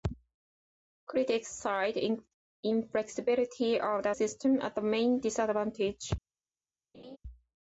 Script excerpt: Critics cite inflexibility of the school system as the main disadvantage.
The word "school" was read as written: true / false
false